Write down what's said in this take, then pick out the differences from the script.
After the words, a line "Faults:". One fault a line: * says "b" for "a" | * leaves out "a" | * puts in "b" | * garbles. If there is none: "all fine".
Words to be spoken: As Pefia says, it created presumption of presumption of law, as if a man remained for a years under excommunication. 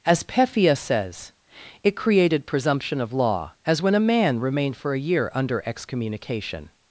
As Pefia says, it created presumption of law, as when a man remained for a year under excommunication.
Faults:
* leaves out "presumption of"
* says "when" for "if"
* says "year" for "years"